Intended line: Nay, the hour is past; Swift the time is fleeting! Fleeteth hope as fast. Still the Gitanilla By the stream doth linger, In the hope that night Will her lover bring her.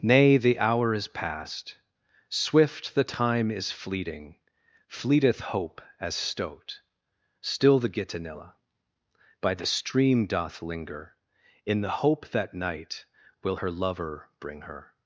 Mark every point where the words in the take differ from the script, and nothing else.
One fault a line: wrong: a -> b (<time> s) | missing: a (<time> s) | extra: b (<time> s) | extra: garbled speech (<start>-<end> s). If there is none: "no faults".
wrong: fast -> stoat (6.2 s)